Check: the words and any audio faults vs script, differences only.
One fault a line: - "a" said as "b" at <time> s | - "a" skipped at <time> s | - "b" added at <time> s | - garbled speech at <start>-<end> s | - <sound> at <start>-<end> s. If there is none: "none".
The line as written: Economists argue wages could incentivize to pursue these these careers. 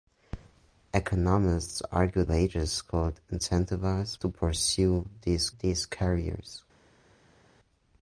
none